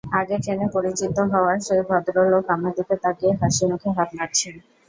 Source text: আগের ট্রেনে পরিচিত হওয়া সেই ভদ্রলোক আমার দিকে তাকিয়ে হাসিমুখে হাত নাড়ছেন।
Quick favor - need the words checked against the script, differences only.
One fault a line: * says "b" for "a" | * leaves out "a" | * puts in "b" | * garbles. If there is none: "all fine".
all fine